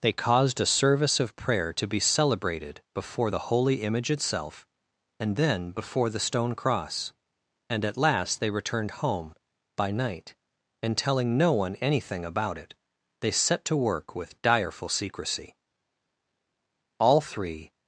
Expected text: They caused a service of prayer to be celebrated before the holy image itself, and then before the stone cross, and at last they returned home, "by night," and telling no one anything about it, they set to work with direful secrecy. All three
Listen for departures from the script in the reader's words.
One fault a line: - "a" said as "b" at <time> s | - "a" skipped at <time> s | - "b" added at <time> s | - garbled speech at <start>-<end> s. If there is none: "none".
none